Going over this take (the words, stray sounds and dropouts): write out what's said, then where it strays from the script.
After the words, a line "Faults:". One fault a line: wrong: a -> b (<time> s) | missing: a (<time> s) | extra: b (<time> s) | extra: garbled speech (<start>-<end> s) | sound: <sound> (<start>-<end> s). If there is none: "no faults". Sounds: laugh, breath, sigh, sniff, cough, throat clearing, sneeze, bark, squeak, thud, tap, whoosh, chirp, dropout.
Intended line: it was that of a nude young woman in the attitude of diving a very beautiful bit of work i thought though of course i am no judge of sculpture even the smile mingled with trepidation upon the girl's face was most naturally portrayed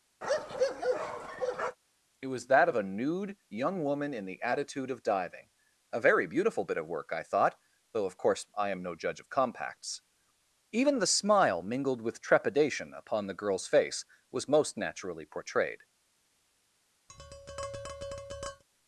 it was that of a nude young woman in the attitude of diving a very beautiful bit of work i thought though of course i am no judge of compacts even the smile mingled with trepidation upon the girl's face was most naturally portrayed
Faults:
sound: bark (0.2-1.8 s)
wrong: sculpture -> compacts (9.3 s)
sound: tap (17.1-18.6 s)